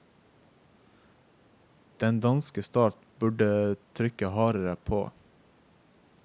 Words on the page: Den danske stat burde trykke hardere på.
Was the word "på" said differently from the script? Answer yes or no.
no